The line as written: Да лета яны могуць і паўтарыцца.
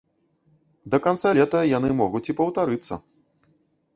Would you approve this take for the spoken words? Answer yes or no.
no